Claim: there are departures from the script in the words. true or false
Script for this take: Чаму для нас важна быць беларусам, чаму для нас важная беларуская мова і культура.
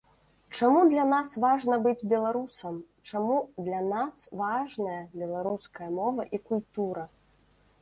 false